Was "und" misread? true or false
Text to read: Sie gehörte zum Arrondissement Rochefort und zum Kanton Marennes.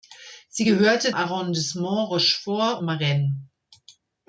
true